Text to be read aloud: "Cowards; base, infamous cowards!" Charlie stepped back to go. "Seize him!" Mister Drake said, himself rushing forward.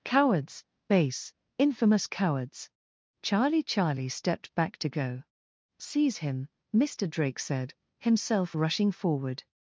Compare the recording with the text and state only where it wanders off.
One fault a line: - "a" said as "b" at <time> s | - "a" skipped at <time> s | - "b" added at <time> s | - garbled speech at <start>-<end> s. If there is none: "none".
- "Charlie" added at 3.6 s